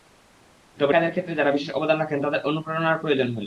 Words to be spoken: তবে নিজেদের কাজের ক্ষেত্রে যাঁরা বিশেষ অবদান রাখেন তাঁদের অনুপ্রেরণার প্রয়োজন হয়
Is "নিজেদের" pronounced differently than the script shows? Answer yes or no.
yes